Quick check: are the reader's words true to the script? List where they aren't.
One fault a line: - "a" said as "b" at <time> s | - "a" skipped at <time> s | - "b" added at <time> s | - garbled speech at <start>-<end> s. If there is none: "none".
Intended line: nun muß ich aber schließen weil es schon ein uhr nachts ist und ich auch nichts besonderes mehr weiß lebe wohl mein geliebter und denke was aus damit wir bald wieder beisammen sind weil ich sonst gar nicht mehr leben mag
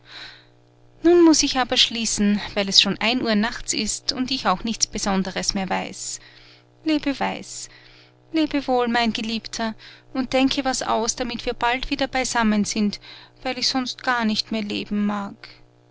- "weiß lebe" added at 7.2 s